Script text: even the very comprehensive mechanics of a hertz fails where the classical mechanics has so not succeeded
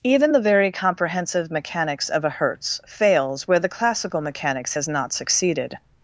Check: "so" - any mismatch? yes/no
yes